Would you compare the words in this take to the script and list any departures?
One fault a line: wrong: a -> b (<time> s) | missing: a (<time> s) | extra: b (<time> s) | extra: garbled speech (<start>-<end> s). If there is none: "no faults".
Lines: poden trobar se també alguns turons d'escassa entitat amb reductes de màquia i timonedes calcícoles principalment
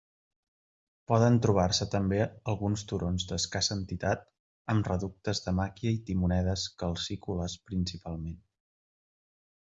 no faults